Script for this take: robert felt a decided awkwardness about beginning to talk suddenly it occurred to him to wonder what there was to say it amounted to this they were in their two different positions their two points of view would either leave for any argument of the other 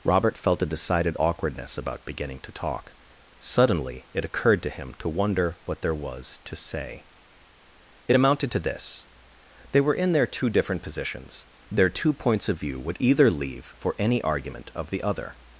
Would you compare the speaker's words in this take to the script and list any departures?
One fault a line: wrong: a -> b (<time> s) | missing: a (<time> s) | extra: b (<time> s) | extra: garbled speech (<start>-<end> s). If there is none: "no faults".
no faults